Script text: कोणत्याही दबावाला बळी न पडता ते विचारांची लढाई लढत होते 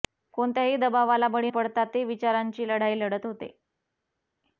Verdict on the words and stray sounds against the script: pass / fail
fail